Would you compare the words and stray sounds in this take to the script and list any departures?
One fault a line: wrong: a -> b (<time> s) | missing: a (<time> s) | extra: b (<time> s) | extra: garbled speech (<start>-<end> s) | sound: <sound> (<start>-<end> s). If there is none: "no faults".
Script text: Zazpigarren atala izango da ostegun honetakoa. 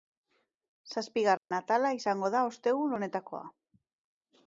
sound: dropout (1.4-1.5 s)